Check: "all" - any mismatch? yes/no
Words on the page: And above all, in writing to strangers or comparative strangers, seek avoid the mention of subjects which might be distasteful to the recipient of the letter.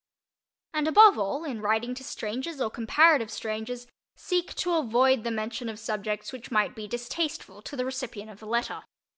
no